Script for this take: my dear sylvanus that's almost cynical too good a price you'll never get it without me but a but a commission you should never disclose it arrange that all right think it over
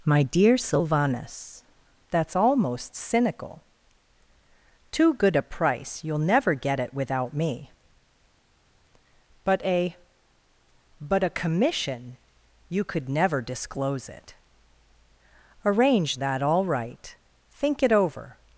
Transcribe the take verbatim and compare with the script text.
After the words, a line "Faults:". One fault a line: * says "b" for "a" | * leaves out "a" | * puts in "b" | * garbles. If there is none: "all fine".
my dear sylvanus that's almost cynical too good a price you'll never get it without me but a but a commission you could never disclose it arrange that all right think it over
Faults:
* says "could" for "should"